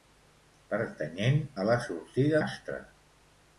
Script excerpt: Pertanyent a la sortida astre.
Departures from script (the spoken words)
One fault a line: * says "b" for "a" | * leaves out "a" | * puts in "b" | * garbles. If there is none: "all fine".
all fine